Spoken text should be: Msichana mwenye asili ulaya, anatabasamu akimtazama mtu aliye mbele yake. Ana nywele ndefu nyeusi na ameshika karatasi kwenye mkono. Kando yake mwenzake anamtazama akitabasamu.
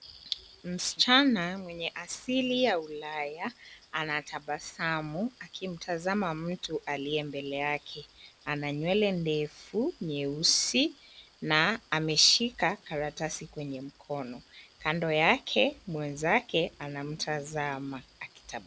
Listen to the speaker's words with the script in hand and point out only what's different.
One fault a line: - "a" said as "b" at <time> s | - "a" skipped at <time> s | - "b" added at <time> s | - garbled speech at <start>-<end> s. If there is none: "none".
- "ya" added at 2.6 s